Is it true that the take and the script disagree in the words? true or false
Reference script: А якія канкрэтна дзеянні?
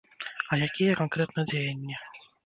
false